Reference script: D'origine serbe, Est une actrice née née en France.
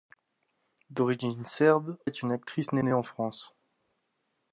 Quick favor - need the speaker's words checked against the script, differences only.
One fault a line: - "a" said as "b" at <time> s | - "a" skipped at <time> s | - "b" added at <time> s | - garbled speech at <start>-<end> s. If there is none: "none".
none